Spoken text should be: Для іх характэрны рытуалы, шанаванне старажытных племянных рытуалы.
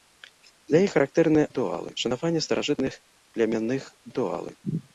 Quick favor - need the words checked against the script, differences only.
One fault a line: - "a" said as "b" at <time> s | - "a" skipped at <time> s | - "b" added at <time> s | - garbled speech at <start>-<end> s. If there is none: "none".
none